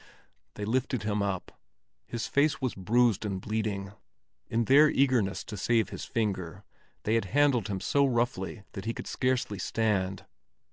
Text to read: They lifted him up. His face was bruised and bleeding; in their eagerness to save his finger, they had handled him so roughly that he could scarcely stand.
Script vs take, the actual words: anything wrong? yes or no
no